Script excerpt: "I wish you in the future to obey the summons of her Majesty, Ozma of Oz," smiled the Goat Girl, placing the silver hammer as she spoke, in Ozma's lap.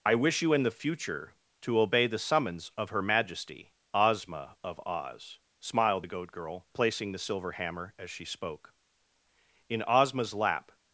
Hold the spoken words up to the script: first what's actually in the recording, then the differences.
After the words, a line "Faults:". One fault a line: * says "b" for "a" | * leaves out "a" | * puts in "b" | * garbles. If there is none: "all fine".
"I wish you in the future to obey the summons of her Majesty, Ozma of Oz," smiled the Goat Girl, placing the silver hammer as she spoke, in Ozma's lap.
Faults:
all fine